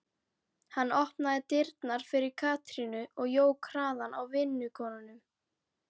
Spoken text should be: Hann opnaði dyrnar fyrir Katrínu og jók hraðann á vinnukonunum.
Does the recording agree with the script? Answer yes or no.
yes